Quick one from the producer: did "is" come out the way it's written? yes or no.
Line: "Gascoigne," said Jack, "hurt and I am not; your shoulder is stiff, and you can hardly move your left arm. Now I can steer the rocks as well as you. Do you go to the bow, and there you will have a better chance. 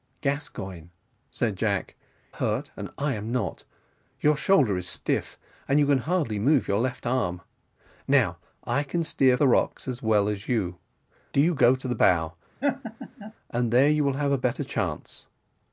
yes